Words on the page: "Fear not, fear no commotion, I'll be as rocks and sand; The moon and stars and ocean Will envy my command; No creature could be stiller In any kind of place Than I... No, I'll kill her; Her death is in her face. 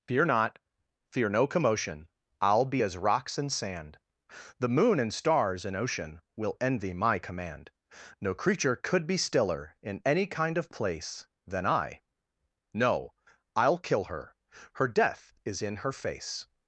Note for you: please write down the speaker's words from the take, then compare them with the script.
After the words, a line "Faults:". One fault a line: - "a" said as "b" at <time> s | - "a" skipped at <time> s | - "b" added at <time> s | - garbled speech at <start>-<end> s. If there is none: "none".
"Fear not, fear no commotion, I'll be as rocks and sand; The moon and stars and ocean Will envy my command; No creature could be stiller In any kind of place Than I... No, I'll kill her; Her death is in her face.
Faults:
none